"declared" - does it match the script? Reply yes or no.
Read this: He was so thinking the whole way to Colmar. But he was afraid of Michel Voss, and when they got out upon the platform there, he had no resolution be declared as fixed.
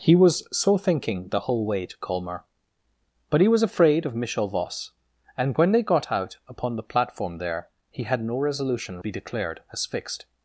yes